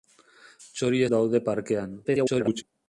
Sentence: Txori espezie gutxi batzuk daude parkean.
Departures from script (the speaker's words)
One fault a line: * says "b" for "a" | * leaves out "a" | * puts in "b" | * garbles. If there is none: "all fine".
* leaves out "espezie gutxi batzuk"
* garbles